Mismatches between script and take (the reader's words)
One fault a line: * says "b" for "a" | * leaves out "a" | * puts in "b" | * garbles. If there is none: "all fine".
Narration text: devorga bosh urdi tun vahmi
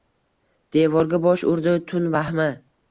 all fine